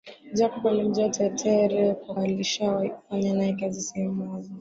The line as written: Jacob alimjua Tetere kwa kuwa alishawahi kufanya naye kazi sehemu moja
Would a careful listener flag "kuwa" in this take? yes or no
yes